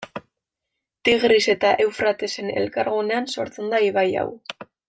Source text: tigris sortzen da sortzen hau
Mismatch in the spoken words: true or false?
true